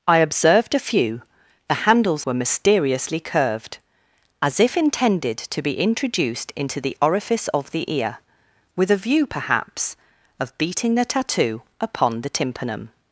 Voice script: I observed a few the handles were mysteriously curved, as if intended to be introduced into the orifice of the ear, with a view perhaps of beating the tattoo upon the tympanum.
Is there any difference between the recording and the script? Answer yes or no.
no